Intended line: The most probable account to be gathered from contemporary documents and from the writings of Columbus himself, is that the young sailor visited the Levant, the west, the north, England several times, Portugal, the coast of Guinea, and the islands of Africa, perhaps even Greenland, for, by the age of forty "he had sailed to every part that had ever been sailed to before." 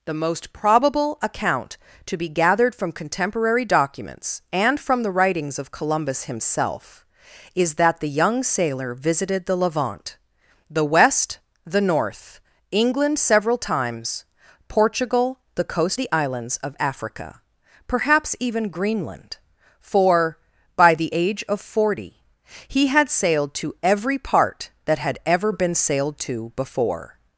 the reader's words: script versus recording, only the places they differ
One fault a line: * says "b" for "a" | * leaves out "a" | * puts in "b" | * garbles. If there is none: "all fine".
* leaves out "of Guinea and"